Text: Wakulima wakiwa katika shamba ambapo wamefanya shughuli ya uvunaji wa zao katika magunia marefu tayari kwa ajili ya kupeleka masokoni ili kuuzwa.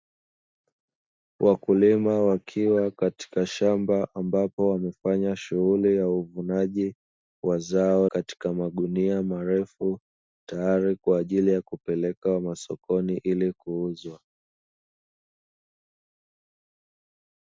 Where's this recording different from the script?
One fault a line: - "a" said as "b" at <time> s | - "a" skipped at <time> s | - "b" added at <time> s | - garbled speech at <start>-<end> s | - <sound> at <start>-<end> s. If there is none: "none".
none